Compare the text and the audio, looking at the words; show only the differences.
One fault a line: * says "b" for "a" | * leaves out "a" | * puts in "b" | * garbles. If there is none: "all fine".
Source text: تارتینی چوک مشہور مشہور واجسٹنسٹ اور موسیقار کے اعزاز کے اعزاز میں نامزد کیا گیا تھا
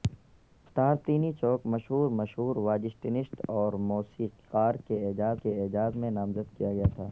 all fine